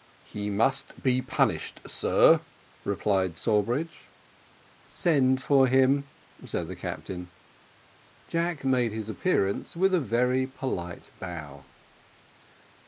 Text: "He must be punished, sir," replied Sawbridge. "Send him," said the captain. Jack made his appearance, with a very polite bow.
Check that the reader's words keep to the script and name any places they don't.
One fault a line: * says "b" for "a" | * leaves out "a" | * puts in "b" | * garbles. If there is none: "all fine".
* puts in "for"